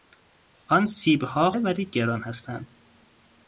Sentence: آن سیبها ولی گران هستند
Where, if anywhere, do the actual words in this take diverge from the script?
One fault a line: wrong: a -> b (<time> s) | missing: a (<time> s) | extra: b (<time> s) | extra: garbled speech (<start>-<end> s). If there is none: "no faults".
no faults